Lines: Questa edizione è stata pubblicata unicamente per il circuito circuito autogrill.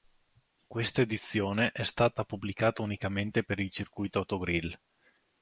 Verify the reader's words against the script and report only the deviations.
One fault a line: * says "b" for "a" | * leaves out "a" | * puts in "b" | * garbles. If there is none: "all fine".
* leaves out "circuito"